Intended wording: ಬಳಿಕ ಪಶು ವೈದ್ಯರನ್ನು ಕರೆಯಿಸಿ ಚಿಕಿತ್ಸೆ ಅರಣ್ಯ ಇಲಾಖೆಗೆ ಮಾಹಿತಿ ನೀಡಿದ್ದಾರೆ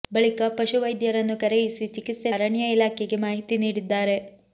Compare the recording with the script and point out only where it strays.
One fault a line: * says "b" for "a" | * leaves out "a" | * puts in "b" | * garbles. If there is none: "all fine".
all fine